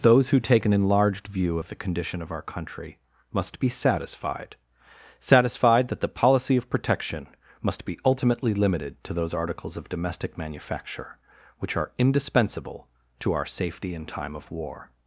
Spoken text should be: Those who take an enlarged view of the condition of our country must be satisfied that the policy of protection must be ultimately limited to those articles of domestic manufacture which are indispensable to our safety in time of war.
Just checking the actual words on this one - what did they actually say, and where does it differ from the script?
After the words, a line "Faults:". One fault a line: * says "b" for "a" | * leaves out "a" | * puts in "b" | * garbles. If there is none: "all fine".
Those who take an enlarged view of the condition of our country must be satisfied satisfied that the policy of protection must be ultimately limited to those articles of domestic manufacture which are indispensable to our safety in time of war.
Faults:
* puts in "satisfied"